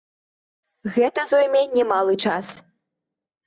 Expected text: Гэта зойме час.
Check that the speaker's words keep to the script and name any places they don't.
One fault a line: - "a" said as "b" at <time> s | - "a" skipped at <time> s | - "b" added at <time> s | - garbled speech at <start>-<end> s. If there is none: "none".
- "немалы" added at 1.8 s